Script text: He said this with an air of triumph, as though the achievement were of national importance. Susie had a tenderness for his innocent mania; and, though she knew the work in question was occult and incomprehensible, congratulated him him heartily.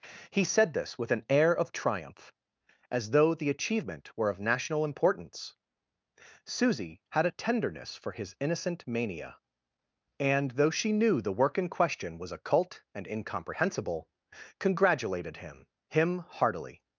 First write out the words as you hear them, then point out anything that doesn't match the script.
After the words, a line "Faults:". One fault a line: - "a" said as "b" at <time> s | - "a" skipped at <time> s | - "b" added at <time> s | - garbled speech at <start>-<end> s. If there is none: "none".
He said this with an air of triumph, as though the achievement were of national importance. Susie had a tenderness for his innocent mania; and, though she knew the work in question was occult and incomprehensible, congratulated him him heartily.
Faults:
none